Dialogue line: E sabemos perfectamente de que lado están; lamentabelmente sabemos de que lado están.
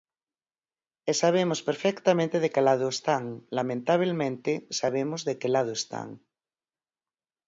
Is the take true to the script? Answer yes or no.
yes